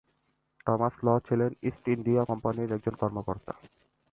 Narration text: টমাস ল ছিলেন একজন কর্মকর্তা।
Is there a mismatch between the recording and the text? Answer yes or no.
yes